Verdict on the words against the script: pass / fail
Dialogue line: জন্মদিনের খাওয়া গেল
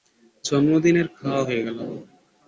fail